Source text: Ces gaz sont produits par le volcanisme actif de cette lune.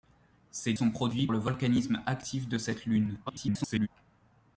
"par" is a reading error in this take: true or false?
true